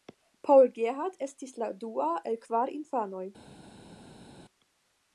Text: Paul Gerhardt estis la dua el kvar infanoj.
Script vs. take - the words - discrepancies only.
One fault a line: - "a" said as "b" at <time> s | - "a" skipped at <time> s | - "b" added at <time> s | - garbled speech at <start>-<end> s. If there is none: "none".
none